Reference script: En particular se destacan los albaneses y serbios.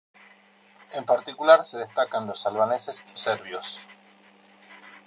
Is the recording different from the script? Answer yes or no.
no